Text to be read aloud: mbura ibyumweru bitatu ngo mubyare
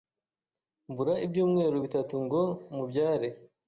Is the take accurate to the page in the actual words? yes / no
yes